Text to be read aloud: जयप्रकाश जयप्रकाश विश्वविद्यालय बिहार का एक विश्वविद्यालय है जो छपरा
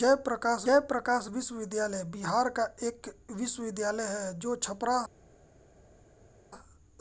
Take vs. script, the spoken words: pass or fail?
pass